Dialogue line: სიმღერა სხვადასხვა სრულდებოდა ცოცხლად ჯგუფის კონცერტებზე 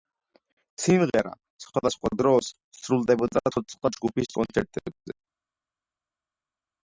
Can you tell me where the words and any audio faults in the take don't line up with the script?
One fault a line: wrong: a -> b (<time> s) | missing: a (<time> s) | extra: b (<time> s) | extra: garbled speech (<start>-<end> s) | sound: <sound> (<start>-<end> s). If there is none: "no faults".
extra: დროს (2.2 s)